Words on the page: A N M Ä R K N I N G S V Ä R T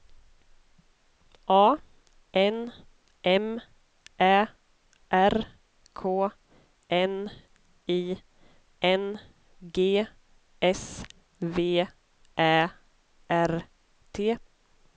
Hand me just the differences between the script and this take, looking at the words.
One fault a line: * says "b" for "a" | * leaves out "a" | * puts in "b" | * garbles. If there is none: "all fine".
all fine